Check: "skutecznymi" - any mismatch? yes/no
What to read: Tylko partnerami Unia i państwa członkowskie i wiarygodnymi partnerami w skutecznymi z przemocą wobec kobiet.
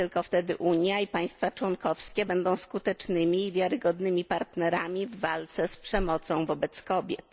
yes